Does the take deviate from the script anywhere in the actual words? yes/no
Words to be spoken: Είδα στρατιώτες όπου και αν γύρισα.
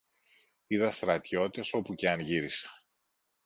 no